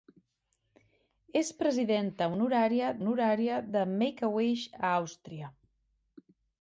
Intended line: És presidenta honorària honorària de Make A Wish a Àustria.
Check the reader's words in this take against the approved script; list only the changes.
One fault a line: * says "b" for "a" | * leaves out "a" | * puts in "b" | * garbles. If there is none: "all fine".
all fine